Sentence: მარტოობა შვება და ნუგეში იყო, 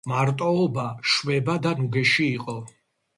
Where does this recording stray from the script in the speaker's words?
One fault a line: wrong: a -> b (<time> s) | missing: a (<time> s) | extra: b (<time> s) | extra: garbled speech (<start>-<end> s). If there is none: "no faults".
no faults